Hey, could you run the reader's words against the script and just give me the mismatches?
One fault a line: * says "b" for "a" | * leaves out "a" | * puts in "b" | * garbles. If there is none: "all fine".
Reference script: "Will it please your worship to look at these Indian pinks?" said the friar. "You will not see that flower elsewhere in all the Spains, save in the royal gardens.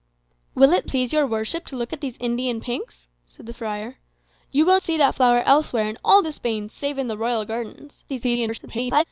* leaves out "not"
* garbles